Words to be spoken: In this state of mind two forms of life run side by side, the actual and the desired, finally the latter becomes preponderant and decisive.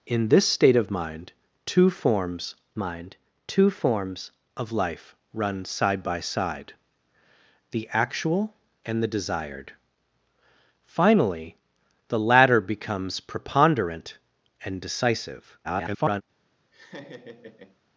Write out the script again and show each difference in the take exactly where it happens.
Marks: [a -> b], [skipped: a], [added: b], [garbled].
In this state of mind two forms [added: mind two forms] of life run side by side, the actual and the desired, finally the latter becomes preponderant and decisive. [garbled]